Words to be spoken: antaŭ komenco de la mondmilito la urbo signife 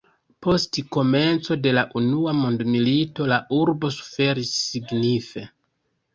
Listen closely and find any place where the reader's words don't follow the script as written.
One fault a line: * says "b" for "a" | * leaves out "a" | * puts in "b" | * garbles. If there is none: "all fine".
* says "post" for "antaŭ"
* puts in "unua"
* puts in "suferis"